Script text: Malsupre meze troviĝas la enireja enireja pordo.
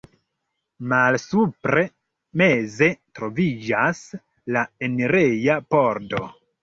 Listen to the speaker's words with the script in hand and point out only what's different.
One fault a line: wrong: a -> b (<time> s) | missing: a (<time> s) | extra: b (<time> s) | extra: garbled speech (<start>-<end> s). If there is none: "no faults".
missing: enireja (5.6 s)